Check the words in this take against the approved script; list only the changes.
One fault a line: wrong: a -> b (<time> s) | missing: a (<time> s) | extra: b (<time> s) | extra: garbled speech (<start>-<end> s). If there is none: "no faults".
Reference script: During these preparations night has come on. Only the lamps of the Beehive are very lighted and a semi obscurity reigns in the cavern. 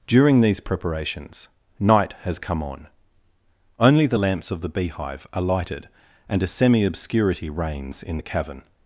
missing: very (5.4 s)